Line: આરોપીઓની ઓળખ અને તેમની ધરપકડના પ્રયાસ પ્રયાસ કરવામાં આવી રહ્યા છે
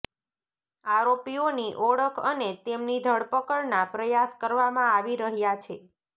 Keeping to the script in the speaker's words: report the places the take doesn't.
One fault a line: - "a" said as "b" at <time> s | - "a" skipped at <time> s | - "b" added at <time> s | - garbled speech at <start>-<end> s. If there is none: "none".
- "પ્રયાસ" skipped at 4.3 s